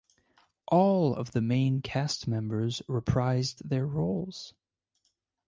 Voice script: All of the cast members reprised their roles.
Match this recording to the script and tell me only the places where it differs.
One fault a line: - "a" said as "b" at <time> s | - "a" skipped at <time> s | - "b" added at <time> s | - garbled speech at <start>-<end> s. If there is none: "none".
- "main" added at 1.4 s